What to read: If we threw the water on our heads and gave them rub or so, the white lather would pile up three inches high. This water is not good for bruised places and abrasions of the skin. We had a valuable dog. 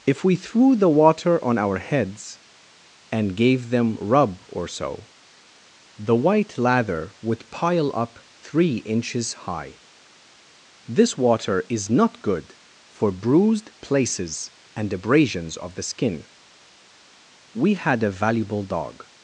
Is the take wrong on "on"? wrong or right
right